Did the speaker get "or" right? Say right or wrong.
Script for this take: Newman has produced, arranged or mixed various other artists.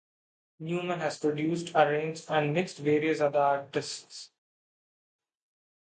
wrong